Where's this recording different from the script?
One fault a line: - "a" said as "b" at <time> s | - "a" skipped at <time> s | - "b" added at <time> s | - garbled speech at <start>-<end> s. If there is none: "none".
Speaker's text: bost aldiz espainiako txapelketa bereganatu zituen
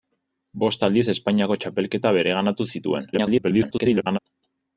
- garbled speech at 3.1-4.2 s